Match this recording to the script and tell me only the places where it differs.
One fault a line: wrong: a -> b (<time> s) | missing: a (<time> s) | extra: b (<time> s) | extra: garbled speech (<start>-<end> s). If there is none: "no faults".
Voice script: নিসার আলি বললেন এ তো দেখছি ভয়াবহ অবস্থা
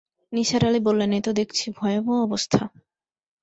no faults